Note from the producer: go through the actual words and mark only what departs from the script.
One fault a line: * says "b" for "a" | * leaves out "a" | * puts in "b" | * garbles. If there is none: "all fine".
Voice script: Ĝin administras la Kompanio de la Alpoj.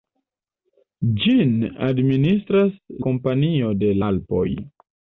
* leaves out "la"
* leaves out "la"